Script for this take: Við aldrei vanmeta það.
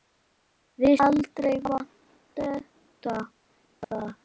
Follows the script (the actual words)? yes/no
yes